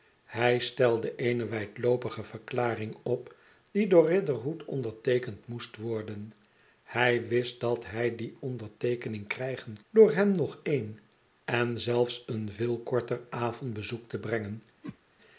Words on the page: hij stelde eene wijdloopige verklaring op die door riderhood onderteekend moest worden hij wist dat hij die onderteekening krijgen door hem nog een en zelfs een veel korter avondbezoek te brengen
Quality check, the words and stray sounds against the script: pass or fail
fail